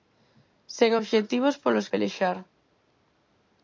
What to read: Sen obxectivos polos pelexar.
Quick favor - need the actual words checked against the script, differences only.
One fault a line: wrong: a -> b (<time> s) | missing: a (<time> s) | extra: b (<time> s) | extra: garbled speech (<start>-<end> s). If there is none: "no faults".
no faults